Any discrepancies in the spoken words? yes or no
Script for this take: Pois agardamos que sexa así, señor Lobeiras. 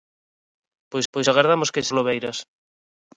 yes